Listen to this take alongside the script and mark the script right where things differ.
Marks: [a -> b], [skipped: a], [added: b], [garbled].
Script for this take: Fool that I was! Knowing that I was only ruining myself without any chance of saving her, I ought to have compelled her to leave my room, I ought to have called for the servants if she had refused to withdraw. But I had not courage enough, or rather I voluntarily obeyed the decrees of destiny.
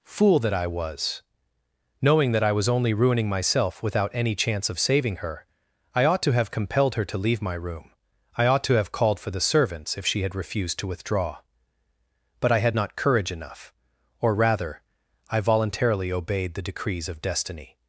Fool that I was! Knowing that I was only ruining myself without any chance of saving her, I ought to have compelled her to leave my room, I ought to have called for the servants if she had refused to withdraw. But I had not courage enough, or rather I voluntarily obeyed the decrees of destiny.